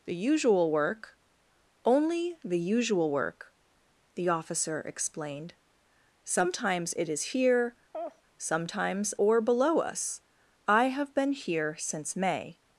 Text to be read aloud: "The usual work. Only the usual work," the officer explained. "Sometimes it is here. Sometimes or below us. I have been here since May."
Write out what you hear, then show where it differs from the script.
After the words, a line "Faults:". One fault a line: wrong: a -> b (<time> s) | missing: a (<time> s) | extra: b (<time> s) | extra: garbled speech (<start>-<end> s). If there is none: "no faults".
"The usual work. Only the usual work," the officer explained. "Sometimes it is here. Sometimes or below us. I have been here since May."
Faults:
no faults